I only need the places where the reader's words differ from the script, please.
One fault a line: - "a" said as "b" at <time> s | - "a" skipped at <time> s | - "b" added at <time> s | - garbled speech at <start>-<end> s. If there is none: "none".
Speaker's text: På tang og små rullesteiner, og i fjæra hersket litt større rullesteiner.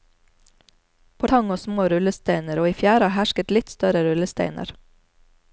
none